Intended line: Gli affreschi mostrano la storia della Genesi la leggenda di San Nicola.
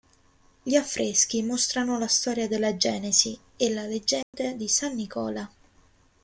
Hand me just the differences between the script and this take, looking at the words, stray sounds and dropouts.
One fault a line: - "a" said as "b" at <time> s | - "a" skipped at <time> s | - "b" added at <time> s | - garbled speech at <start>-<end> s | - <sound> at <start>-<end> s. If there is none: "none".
- "e" added at 3.5 s
- dropout at 4.2-4.3 s